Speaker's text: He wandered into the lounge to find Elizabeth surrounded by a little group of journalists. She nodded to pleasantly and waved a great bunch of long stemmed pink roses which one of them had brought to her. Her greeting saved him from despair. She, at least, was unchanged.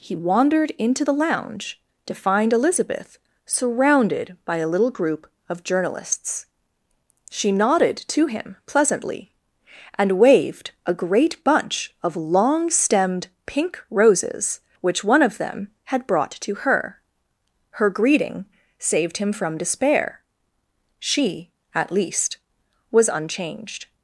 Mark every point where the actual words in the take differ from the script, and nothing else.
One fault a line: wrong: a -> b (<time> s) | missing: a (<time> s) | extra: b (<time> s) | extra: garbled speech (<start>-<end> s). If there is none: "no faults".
extra: him (8.3 s)